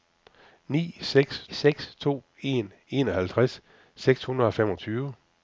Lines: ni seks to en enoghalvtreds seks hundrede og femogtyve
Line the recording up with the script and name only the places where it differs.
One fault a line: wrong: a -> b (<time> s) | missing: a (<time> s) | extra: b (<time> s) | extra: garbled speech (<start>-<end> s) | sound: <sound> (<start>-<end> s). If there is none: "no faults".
extra: seks (1.5 s)